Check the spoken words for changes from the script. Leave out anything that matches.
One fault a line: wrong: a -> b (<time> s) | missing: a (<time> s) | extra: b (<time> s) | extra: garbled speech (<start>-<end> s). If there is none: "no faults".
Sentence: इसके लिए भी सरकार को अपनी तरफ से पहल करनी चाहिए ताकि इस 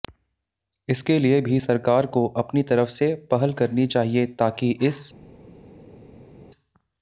no faults